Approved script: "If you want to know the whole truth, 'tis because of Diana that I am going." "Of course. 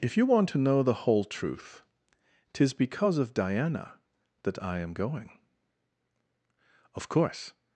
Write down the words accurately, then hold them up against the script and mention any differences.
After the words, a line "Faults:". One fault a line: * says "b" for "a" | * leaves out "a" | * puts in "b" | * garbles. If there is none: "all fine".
"If you want to know the whole truth, 'tis because of Diana that I am going." "Of course.
Faults:
all fine